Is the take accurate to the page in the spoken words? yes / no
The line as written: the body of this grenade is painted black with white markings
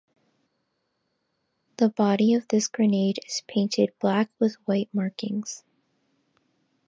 yes